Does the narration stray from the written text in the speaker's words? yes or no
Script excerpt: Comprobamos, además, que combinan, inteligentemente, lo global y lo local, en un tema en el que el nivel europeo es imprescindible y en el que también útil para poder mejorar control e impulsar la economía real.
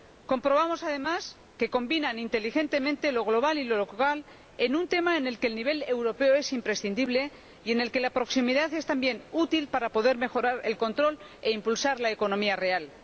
yes